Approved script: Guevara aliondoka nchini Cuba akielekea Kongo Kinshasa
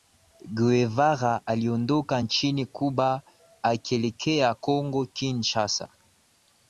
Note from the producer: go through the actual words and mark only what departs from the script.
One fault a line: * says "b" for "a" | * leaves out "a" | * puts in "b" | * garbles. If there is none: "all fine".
all fine